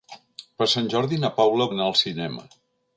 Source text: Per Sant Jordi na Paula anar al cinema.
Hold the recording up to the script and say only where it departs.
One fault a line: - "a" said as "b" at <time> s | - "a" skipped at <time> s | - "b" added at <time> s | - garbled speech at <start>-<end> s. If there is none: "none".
none